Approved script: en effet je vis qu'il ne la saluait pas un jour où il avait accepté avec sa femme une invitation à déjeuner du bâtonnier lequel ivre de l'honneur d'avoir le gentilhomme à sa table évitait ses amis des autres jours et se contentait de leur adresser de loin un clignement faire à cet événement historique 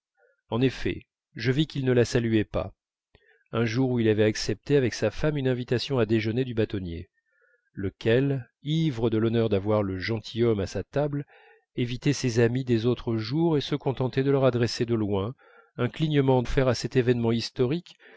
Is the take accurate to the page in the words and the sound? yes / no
yes